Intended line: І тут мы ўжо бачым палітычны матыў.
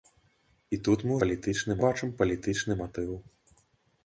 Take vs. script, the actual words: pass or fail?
fail